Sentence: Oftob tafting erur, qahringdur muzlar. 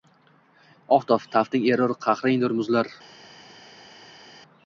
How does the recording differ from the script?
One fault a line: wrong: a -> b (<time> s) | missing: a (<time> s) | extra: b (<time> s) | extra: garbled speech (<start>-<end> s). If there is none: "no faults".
no faults